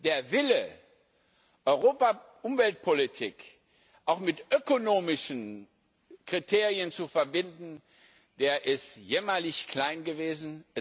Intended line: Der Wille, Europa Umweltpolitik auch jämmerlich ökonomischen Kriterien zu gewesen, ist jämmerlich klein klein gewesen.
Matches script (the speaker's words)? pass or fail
fail